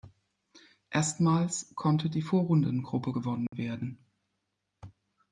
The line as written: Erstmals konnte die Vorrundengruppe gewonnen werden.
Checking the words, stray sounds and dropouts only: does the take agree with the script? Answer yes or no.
no